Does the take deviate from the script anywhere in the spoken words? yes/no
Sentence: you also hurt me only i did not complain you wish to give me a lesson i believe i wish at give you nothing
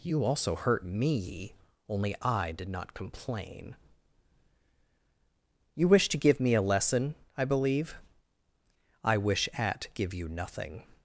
no